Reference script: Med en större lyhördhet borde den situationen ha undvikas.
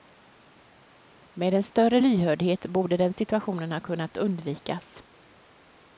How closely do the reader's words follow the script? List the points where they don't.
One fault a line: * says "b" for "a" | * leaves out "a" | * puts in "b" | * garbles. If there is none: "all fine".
* puts in "kunnat"